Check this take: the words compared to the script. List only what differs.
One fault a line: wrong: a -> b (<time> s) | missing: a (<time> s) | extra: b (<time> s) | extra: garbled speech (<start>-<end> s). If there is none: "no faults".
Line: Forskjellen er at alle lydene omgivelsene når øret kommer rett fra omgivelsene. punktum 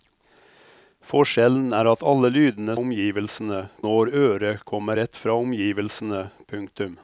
no faults